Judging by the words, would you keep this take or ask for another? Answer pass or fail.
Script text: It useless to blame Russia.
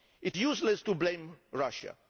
pass